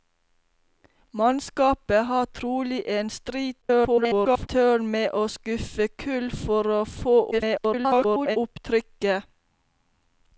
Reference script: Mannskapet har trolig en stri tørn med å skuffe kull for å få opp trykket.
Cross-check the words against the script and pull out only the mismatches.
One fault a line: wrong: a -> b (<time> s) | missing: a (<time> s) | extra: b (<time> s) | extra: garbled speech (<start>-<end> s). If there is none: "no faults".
extra: garbled speech (3.6-4.5 s)
extra: garbled speech (7.3-8.4 s)